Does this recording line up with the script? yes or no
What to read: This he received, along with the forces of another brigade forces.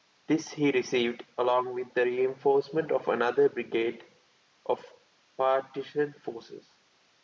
no